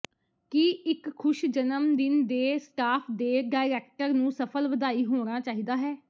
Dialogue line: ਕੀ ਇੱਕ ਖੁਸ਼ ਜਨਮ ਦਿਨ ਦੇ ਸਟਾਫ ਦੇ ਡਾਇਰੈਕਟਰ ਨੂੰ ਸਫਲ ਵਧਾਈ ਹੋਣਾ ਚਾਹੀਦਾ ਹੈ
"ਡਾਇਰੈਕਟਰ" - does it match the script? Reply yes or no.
yes